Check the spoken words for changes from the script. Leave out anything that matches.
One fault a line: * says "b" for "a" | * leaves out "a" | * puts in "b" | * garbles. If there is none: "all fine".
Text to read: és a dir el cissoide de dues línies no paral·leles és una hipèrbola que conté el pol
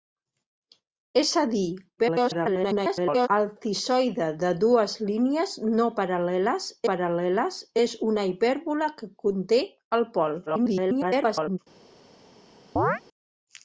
* garbles
* puts in "paral·leles"
* garbles